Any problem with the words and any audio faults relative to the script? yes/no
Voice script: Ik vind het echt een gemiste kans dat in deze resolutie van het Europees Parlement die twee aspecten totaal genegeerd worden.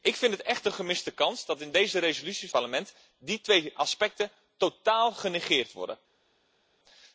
yes